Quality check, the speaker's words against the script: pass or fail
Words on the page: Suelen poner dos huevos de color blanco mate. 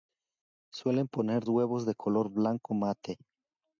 fail